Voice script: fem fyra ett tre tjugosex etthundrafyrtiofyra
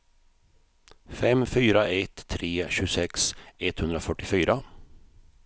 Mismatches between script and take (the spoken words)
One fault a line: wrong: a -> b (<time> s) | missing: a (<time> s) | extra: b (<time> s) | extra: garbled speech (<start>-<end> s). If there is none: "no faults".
no faults